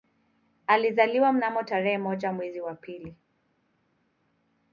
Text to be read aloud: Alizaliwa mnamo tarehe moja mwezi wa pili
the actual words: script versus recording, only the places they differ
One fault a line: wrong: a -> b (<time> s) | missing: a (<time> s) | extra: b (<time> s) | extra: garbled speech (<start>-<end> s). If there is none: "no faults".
no faults